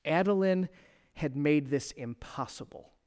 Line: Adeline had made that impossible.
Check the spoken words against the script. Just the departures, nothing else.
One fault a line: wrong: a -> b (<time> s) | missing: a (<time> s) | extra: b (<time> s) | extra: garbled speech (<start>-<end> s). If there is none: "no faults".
wrong: that -> this (1.7 s)